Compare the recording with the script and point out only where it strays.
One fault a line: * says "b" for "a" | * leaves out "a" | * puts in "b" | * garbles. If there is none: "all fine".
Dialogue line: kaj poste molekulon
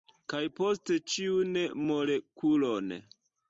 * puts in "ĉiun"